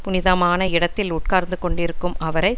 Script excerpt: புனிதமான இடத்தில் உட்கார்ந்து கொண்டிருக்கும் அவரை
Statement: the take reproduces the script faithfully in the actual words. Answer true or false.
true